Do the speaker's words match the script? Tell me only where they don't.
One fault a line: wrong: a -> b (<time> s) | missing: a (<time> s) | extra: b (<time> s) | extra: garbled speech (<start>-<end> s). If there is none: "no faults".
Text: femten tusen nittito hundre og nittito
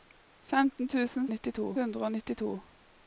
no faults